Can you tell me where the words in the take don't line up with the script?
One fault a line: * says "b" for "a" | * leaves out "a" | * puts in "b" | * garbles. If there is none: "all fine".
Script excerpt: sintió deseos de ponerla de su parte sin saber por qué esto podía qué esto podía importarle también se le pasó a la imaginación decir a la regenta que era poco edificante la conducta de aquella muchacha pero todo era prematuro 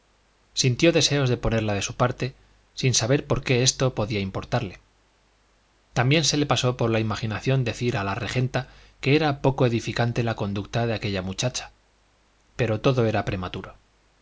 * leaves out "qué esto podía"
* says "por" for "a"